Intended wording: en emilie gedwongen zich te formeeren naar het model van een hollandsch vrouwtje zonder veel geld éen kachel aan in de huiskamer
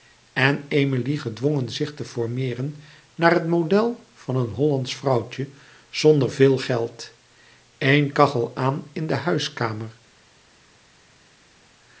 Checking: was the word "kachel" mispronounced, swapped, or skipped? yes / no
no